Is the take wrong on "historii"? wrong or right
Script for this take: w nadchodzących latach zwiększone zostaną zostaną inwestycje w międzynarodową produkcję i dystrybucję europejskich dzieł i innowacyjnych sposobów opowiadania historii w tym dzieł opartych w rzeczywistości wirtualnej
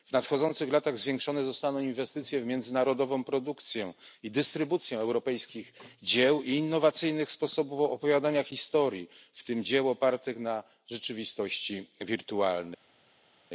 right